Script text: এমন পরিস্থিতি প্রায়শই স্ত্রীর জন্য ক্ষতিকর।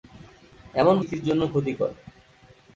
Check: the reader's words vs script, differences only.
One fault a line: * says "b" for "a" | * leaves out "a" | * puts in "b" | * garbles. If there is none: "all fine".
* leaves out "পরিস্থিতি প্রায়শই"